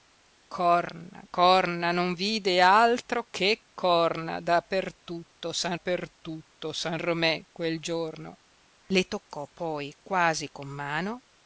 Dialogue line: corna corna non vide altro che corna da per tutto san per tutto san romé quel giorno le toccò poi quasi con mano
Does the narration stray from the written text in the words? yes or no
no